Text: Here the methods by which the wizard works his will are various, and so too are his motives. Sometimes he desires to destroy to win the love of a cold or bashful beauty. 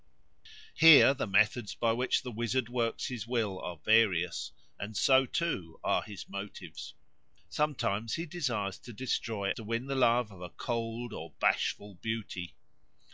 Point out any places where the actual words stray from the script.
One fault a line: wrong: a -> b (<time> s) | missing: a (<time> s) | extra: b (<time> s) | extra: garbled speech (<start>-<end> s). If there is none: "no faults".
no faults